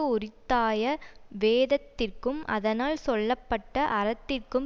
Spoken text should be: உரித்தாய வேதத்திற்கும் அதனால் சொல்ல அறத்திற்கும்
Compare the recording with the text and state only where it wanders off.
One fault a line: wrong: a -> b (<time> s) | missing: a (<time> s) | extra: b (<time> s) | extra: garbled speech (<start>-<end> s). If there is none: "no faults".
extra: பட்ட (3.5 s)